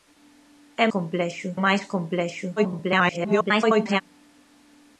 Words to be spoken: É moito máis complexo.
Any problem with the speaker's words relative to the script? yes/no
yes